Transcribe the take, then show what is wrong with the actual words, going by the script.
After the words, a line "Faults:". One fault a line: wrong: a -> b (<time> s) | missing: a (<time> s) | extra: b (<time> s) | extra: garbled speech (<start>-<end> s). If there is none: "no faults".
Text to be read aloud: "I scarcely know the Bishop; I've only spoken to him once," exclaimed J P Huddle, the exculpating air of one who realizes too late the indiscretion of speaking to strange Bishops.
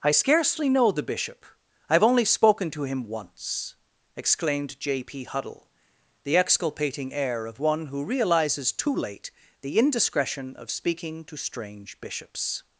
"I scarcely know the Bishop; I've only spoken to him once," exclaimed J P Huddle, the exculpating air of one who realizes too late the indiscretion of speaking to strange Bishops.
Faults:
no faults